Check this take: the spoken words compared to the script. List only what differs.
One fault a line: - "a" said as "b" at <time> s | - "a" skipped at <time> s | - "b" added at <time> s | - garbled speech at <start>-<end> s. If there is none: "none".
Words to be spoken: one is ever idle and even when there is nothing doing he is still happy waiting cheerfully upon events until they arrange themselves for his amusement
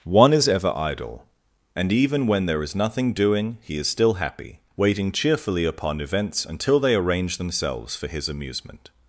none